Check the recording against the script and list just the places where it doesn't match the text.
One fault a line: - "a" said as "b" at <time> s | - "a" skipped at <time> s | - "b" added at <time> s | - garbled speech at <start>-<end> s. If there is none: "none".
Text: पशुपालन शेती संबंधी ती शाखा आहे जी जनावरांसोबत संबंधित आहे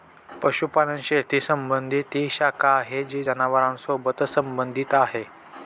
none